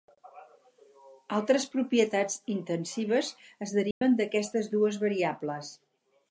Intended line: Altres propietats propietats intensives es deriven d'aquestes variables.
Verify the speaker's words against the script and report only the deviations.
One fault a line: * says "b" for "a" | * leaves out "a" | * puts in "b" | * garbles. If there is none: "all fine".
* leaves out "propietats"
* puts in "dues"